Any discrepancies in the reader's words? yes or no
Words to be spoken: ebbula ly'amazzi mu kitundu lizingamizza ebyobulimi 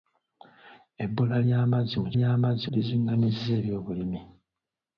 yes